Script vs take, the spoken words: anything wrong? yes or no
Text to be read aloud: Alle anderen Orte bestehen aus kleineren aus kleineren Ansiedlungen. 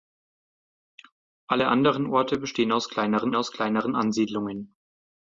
no